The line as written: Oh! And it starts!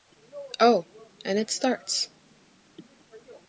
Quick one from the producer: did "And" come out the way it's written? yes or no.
yes